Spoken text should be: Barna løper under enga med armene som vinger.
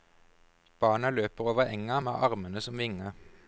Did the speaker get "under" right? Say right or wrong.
wrong